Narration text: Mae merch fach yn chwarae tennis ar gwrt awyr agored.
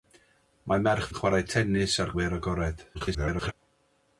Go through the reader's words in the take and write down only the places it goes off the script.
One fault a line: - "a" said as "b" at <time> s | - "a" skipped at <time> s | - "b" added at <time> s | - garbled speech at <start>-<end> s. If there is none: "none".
- "fach" skipped at 1.1 s
- "gwrt" skipped at 2.1 s
- garbled speech at 2.9-3.5 s